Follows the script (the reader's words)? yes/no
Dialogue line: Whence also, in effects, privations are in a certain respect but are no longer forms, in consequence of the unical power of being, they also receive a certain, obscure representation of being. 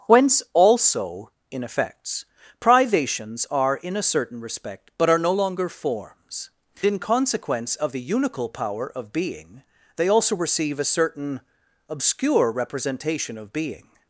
yes